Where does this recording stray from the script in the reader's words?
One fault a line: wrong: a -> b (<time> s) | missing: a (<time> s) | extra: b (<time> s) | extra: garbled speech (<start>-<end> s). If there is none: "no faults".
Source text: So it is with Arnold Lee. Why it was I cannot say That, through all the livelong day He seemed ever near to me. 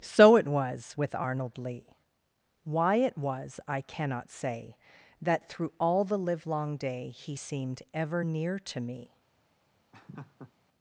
wrong: is -> was (0.5 s)